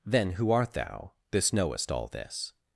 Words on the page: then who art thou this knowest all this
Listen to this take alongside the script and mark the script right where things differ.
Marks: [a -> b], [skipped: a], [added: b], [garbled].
then who art thou this knowest all this